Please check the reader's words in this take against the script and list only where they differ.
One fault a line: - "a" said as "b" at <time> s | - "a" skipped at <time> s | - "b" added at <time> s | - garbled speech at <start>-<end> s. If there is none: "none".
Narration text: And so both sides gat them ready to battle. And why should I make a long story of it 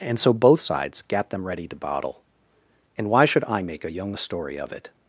- "battle" said as "bottle" at 1.8 s
- "long" said as "young" at 3.9 s